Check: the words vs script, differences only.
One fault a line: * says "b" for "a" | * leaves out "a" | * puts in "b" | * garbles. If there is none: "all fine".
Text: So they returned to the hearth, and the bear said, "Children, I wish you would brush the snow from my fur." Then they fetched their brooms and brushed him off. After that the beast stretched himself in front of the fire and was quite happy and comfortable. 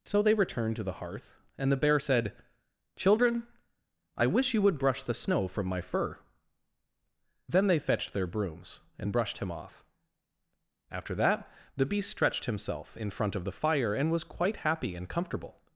all fine